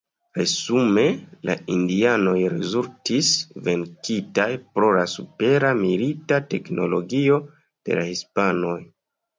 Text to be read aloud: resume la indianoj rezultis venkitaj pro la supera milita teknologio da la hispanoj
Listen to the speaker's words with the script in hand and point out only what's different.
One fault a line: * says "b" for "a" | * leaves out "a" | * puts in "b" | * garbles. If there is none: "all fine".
* says "de" for "da"